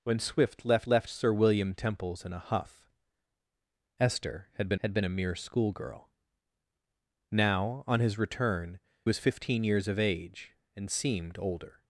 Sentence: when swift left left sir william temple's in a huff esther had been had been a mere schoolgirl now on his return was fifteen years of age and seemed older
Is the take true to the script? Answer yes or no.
yes